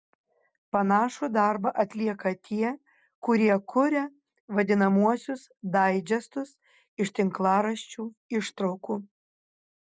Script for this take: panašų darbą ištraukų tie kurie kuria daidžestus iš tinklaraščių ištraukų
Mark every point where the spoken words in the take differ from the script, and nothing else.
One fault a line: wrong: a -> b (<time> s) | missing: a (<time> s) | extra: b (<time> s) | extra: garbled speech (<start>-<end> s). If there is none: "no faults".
wrong: ištraukų -> atlieka (1.8 s)
extra: vadinamuosius (4.6 s)